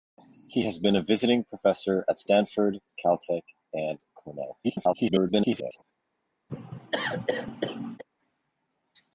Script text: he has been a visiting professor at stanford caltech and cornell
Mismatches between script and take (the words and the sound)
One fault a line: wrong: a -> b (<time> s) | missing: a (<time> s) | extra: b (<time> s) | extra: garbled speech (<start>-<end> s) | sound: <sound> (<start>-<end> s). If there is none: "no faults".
extra: garbled speech (4.6-5.8 s)
sound: cough (6.5-8.0 s)